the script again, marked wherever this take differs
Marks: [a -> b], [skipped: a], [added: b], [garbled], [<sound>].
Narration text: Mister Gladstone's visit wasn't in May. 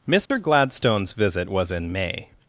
Mister [dropout] Gladstone's visit [wasn't -> was] in May.